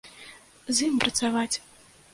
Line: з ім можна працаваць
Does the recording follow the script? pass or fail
fail